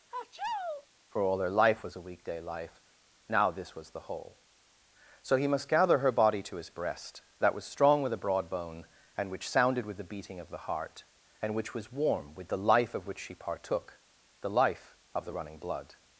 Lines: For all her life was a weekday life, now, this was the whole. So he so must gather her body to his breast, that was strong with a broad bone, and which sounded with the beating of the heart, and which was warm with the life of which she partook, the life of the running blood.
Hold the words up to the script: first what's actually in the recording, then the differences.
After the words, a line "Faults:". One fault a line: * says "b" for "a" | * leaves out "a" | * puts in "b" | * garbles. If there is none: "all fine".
For all her life was a weekday life, now, this was the whole. So he must gather her body to his breast, that was strong with a broad bone, and which sounded with the beating of the heart, and which was warm with the life of which she partook, the life of the running blood.
Faults:
* leaves out "so"